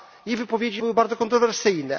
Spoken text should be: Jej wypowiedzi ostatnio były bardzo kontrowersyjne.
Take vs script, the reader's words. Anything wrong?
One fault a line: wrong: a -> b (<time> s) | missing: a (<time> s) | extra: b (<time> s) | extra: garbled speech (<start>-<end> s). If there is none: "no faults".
missing: ostatnio (0.8 s)